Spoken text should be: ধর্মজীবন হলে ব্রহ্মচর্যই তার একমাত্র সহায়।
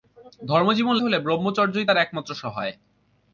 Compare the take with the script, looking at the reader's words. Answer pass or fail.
pass